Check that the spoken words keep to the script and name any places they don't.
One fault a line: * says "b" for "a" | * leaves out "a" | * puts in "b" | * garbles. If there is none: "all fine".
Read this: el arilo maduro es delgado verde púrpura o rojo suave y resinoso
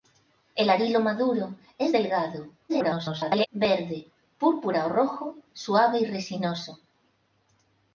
* garbles